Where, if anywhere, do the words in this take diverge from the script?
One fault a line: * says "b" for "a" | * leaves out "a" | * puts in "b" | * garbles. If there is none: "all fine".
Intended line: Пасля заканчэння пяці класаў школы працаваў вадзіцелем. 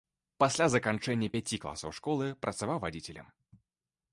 all fine